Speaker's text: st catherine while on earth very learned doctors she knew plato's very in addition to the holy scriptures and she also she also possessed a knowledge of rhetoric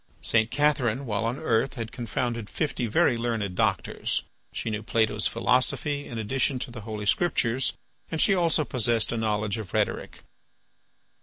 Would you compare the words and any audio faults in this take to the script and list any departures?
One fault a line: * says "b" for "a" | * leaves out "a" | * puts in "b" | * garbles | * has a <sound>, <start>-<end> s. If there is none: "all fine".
* puts in "had confounded fifty"
* says "philosophy" for "very"
* leaves out "she also"